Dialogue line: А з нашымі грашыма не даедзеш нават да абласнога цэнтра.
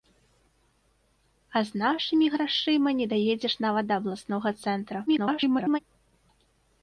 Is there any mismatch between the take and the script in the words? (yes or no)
yes